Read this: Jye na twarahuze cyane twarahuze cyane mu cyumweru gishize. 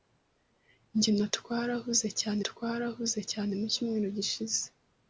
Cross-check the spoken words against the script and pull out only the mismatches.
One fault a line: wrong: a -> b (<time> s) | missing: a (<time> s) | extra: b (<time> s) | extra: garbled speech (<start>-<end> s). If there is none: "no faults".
no faults